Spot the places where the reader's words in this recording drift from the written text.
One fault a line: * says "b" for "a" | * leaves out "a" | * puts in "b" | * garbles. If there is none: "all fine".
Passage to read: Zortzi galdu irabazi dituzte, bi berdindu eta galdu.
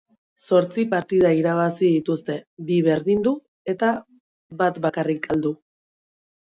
* says "partida" for "galdu"
* puts in "bat bakarrik"